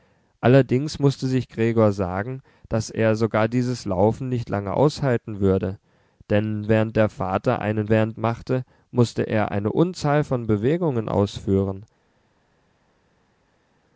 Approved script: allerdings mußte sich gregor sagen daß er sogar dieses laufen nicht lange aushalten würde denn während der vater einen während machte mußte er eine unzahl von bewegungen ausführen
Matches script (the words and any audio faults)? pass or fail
pass